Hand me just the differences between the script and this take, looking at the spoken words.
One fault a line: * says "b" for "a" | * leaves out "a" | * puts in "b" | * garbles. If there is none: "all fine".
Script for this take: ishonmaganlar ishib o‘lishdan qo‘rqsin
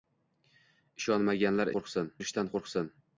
* says "qo‘rqsin" for "ishib"